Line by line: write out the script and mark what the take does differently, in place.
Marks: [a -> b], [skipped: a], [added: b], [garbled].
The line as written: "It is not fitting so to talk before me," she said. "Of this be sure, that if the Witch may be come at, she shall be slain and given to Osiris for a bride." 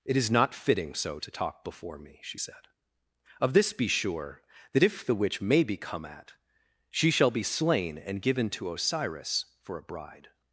"It is not fitting so to talk before me," she said. "Of this be sure, that if the Witch may be come at, she shall be slain and given to Osiris for a bride."